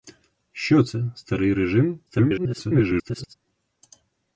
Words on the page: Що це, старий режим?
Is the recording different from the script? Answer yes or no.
yes